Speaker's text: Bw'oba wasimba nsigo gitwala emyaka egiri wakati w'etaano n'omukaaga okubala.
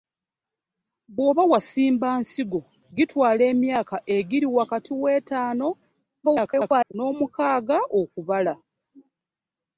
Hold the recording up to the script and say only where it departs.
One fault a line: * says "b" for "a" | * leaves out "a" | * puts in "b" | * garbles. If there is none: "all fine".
* garbles